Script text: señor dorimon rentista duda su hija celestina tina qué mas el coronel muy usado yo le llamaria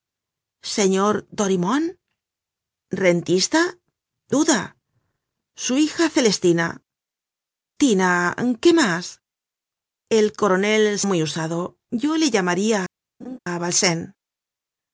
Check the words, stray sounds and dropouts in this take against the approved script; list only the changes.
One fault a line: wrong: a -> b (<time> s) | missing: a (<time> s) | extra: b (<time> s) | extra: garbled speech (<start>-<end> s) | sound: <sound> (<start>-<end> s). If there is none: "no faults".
sound: laugh (13.2-13.4 s)